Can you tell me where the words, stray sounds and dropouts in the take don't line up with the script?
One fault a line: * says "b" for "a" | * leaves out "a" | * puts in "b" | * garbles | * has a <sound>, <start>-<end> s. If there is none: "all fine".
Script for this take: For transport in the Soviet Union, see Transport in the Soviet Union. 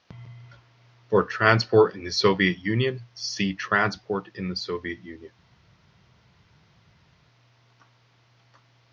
all fine